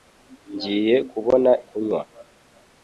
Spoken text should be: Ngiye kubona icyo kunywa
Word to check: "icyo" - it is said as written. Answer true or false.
false